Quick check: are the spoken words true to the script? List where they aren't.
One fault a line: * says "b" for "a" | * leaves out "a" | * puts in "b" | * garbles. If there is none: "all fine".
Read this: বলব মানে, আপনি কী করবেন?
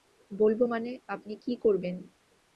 all fine